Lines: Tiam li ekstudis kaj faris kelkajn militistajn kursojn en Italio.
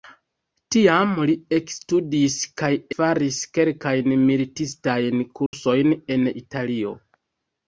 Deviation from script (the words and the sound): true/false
true